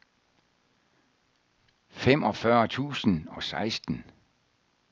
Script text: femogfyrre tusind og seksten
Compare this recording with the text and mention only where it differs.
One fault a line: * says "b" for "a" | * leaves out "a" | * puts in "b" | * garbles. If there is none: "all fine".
all fine